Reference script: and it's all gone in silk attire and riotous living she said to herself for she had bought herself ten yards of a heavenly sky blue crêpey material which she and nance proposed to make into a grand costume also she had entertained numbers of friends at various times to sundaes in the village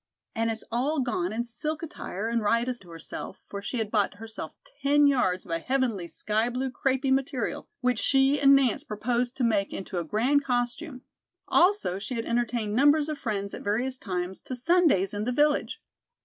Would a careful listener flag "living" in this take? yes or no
yes